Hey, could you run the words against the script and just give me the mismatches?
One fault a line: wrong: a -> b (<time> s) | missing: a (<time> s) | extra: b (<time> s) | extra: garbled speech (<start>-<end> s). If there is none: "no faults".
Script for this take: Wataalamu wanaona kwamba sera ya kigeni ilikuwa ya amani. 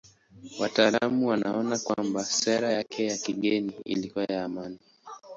extra: yake (2.7 s)